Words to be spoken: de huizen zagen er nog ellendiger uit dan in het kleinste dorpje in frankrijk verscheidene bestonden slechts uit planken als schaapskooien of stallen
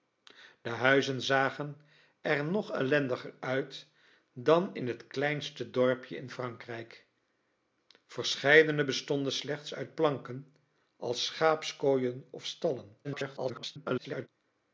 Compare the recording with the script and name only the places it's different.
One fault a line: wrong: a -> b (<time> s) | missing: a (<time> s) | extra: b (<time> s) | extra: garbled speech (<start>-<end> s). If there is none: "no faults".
extra: garbled speech (13.0-14.3 s)